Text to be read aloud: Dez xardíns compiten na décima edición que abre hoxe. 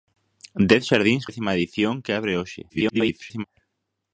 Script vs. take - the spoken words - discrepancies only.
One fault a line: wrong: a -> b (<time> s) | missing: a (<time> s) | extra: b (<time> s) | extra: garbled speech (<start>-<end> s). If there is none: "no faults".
missing: compiten na (1.2 s)
extra: garbled speech (2.7-3.4 s)